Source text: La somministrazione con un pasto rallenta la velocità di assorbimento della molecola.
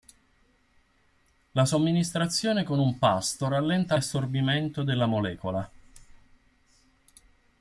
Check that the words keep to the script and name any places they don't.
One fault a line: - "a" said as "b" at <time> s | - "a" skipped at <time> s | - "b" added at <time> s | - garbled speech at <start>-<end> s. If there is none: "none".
- "la velocità di" skipped at 4.0 s